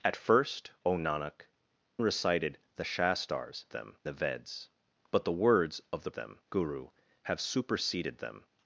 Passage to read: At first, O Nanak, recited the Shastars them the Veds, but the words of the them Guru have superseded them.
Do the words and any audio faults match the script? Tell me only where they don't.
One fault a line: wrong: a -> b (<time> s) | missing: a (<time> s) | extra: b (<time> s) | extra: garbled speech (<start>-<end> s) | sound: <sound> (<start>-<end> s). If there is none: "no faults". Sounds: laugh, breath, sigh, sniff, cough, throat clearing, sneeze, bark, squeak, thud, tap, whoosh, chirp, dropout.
no faults